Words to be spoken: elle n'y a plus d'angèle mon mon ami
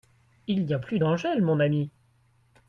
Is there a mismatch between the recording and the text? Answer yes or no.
yes